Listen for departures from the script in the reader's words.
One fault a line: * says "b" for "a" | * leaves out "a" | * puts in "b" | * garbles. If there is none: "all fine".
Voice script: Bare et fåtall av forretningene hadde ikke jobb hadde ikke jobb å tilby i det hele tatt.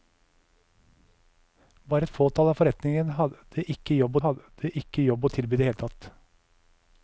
all fine